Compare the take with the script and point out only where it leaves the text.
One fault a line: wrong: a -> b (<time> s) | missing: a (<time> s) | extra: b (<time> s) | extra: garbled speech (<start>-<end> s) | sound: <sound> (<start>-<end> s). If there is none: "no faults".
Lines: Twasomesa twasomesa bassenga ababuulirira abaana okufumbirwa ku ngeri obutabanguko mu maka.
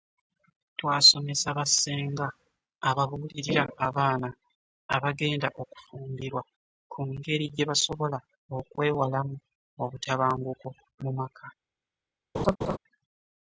missing: twasomesa (1.5 s)
extra: abagenda (5.0 s)
extra: gye basobola okwewalamu (7.5 s)
sound: laugh (12.3-12.8 s)